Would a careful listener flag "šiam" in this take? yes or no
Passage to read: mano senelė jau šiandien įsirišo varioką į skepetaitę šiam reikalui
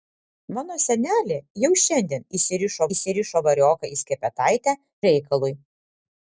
yes